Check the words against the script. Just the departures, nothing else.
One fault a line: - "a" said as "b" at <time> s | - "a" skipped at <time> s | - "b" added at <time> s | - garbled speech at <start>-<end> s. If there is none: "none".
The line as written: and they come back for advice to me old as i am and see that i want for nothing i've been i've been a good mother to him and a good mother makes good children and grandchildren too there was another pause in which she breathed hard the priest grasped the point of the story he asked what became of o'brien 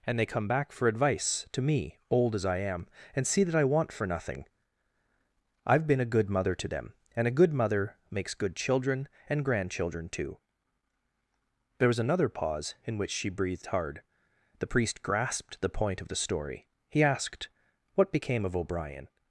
- "i've been" skipped at 6.0 s
- "him" said as "them" at 6.7 s